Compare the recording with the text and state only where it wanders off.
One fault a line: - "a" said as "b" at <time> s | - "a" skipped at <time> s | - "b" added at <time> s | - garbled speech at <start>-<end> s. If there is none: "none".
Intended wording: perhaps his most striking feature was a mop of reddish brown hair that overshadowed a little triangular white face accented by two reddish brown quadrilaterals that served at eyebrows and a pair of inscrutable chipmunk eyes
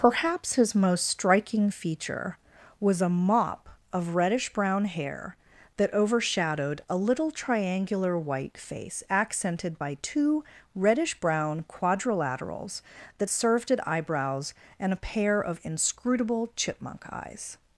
none